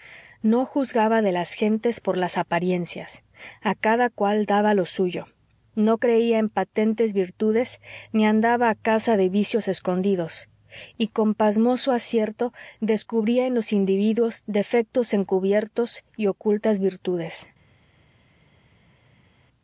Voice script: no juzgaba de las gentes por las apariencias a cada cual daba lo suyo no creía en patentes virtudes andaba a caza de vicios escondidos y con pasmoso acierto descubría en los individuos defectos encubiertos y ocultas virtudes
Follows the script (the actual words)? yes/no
no